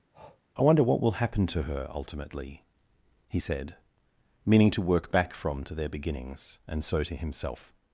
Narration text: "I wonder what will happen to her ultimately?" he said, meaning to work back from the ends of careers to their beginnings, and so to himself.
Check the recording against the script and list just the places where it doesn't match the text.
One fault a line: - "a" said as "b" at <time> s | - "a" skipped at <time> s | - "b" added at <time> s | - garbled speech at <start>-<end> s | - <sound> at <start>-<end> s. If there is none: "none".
- breath at 0.1-0.4 s
- "the ends of careers" skipped at 5.6 s